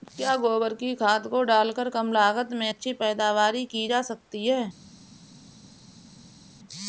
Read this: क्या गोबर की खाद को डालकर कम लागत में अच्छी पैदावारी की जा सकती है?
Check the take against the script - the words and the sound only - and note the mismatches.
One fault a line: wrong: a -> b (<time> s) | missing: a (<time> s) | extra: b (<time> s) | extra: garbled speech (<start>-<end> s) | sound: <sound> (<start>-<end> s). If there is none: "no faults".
no faults